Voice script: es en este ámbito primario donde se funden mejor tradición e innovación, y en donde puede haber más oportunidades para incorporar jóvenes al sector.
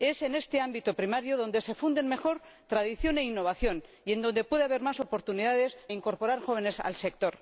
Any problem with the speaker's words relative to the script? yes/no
yes